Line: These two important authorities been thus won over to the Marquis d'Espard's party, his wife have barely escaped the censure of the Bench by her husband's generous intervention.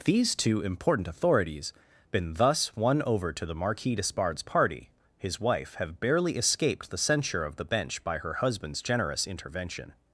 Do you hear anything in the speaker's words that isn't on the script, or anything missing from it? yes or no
no